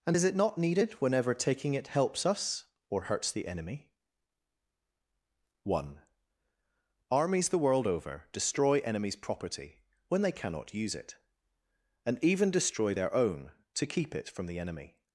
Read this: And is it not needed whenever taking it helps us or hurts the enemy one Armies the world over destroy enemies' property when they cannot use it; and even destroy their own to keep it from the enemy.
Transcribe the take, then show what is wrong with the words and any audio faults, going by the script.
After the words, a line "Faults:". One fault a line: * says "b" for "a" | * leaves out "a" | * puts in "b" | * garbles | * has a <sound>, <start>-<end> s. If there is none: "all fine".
And is it not needed whenever taking it helps us or hurts the enemy one Armies the world over destroy enemies' property when they cannot use it; and even destroy their own to keep it from the enemy.
Faults:
all fine